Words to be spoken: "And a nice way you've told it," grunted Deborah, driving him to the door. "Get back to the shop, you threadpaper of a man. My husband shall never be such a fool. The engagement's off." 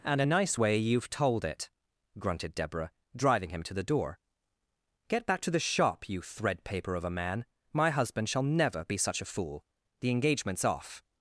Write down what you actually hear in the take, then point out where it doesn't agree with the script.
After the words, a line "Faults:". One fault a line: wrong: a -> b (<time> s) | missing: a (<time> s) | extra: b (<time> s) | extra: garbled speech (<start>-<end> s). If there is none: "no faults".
"And a nice way you've told it," grunted Deborah, driving him to the door. "Get back to the shop, you threadpaper of a man. My husband shall never be such a fool. The engagement's off."
Faults:
no faults